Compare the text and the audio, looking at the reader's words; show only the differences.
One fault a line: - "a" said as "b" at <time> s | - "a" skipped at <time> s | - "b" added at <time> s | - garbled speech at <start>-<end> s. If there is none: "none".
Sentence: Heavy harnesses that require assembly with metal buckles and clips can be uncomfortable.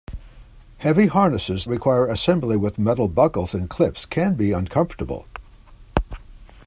- "that" skipped at 1.7 s